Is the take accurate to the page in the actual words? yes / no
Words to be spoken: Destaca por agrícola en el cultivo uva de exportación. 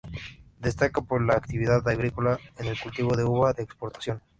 no